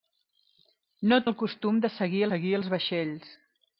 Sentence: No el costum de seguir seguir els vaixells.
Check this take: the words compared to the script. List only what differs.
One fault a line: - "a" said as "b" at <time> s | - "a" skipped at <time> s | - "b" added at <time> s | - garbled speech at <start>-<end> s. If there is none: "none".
none